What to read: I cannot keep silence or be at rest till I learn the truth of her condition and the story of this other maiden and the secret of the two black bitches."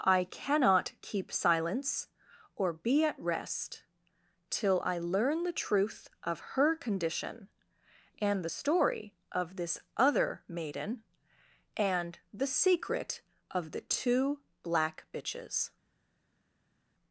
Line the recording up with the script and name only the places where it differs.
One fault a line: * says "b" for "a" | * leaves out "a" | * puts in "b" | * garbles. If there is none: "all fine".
all fine